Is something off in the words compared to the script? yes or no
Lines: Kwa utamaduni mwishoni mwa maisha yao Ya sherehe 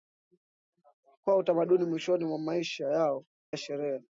no